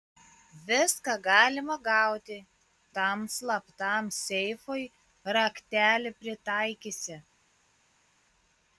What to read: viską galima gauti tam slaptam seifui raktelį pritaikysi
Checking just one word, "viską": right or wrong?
right